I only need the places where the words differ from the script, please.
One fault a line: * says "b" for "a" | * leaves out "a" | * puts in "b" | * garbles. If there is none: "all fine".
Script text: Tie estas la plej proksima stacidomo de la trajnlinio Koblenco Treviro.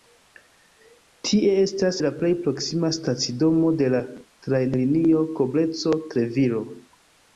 all fine